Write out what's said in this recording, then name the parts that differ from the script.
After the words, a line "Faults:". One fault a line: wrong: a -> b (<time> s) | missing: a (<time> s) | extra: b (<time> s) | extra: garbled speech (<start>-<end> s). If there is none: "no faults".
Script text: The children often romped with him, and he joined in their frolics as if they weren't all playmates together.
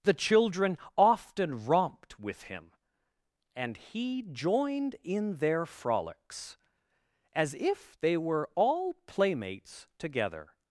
The children often romped with him, and he joined in their frolics as if they were all playmates together.
Faults:
wrong: weren't -> were (8.2 s)